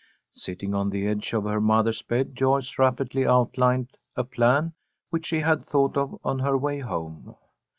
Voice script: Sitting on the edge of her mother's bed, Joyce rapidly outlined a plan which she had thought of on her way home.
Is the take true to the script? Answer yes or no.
yes